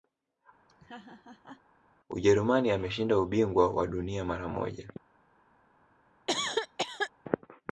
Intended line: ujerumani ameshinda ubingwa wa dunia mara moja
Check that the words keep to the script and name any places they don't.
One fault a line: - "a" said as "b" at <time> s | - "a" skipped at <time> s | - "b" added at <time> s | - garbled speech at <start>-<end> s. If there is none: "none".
none